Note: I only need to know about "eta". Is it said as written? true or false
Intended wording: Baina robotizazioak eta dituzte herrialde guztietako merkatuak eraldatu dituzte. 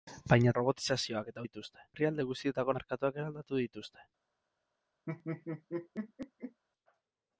true